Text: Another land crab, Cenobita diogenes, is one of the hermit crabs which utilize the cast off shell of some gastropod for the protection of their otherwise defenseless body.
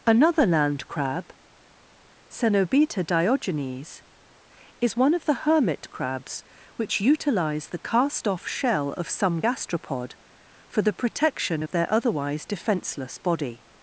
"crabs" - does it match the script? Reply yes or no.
yes